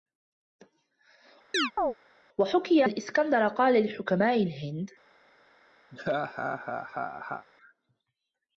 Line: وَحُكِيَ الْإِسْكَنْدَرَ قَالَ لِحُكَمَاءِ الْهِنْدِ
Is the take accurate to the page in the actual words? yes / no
yes